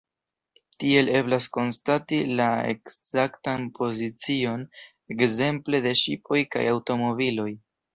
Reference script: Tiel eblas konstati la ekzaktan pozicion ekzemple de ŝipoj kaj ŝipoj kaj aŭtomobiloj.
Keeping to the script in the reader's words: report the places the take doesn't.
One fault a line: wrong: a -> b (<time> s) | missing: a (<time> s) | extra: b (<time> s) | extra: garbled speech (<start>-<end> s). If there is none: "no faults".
missing: ŝipoj kaj (6.7 s)